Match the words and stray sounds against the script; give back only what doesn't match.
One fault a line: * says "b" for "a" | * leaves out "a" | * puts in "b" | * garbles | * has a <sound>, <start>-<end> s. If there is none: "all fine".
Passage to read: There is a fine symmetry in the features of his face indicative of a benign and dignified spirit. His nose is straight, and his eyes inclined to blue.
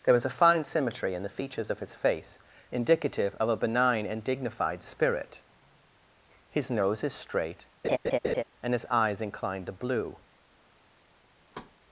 * says "was" for "is"
* has a laugh, 7.8-8.4 s
* has a thud, 11.5-11.8 s